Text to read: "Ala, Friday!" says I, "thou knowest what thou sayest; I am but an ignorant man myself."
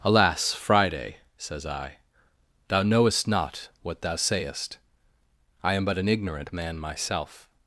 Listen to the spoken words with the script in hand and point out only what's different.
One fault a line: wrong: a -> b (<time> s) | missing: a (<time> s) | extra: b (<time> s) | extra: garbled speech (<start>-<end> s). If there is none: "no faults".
wrong: Ala -> Alas (0.0 s)
extra: not (3.3 s)